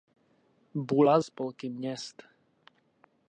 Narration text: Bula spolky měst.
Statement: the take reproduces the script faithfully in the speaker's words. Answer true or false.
true